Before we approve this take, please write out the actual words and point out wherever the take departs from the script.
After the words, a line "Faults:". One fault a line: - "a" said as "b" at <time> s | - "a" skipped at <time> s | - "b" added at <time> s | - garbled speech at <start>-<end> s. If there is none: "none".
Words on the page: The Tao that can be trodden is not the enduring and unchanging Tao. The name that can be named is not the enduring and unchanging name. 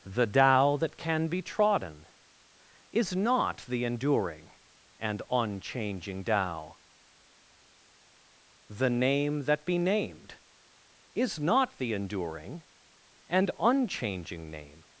The Tao that can be trodden is not the enduring and unchanging Tao. The name that be named is not the enduring and unchanging name.
Faults:
- "can" skipped at 9.7 s